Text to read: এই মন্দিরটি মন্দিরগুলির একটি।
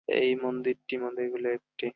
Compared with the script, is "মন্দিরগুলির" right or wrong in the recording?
right